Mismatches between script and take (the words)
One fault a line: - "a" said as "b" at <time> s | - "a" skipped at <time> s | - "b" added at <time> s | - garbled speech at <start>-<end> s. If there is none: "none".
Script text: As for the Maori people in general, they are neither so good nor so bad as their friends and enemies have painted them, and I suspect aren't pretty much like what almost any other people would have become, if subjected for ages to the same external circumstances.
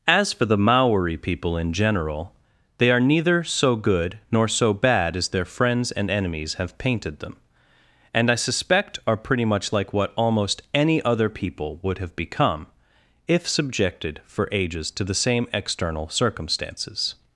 - "aren't" said as "are" at 9.1 s